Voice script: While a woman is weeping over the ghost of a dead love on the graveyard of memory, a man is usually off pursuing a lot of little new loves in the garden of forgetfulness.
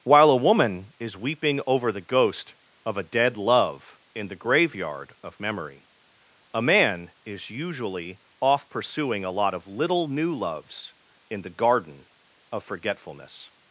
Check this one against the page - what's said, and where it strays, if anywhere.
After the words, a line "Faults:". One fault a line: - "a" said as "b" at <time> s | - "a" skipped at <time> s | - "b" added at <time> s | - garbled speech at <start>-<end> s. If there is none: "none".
While a woman is weeping over the ghost of a dead love in the graveyard of memory, a man is usually off pursuing a lot of little new loves in the garden of forgetfulness.
Faults:
- "on" said as "in" at 4.2 s